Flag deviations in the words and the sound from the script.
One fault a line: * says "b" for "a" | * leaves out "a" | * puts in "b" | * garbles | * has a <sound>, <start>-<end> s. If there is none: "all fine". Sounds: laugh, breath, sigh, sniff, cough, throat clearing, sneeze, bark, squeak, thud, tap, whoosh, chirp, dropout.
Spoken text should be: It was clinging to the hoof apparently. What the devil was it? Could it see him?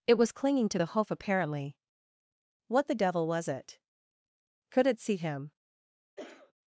* has a cough, 6.2-6.5 s